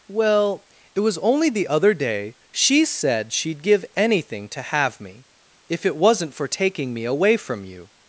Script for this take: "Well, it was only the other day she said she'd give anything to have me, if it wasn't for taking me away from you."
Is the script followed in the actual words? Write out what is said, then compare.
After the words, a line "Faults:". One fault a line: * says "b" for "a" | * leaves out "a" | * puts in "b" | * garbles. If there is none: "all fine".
"Well, it was only the other day she said she'd give anything to have me, if it wasn't for taking me away from you."
Faults:
all fine